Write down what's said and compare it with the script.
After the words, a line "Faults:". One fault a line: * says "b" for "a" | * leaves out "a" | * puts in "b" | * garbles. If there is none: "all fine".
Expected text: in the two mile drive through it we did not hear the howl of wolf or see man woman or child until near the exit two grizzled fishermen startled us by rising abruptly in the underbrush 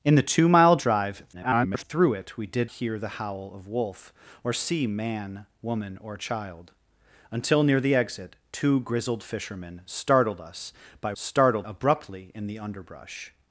in the two mile drive [garbled] through it we did hear the howl of wolf or see man woman or child until near the exit two grizzled fishermen startled us by startled abruptly in the underbrush
Faults:
* garbles
* leaves out "not"
* says "startled" for "rising"